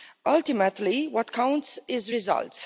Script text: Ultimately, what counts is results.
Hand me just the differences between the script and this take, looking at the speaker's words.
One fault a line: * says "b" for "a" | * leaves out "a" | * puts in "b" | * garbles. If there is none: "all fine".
all fine